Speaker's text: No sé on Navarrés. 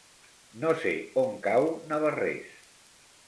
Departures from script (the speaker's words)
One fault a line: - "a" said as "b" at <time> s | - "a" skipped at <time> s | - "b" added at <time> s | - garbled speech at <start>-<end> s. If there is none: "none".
- "cau" added at 1.4 s